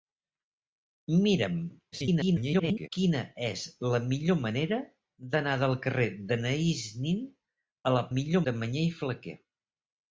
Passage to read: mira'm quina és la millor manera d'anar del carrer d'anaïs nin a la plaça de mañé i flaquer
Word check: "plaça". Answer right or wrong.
wrong